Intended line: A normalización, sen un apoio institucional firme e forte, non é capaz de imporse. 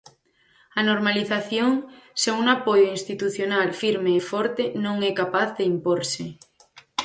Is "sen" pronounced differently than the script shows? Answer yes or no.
no